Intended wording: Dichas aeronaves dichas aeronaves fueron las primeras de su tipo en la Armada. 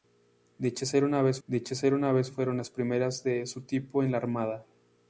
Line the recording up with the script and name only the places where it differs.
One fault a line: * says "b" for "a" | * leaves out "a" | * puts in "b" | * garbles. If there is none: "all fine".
all fine